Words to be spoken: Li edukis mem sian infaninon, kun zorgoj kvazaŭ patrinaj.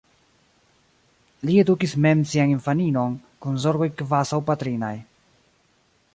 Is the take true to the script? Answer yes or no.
yes